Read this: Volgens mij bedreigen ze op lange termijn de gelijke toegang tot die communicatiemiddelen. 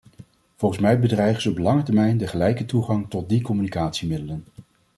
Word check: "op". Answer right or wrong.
right